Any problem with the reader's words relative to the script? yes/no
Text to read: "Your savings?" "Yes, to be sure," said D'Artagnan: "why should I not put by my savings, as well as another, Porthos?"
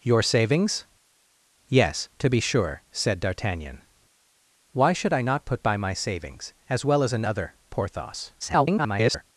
yes